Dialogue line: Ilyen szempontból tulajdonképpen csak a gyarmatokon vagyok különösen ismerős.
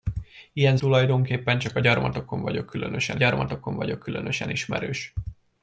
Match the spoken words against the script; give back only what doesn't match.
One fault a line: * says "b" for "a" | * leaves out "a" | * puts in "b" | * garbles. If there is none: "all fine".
* leaves out "szempontból"
* puts in "gyarmatokon vagyok különösen"